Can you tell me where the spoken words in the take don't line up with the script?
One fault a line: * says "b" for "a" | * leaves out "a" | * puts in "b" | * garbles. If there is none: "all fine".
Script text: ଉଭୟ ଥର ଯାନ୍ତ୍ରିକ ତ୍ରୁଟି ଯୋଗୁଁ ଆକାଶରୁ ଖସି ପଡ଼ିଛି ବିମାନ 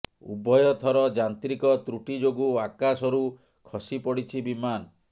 all fine